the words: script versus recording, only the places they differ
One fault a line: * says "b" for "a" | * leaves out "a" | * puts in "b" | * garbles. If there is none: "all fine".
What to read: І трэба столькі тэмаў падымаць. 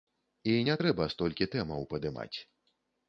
* puts in "не"